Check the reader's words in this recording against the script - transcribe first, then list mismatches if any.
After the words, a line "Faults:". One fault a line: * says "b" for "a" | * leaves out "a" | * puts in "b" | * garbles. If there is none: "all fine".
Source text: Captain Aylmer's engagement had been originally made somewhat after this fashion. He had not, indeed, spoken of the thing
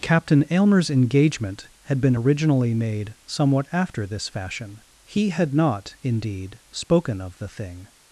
Captain Aylmer's engagement had been originally made somewhat after this fashion. He had not, indeed, spoken of the thing
Faults:
all fine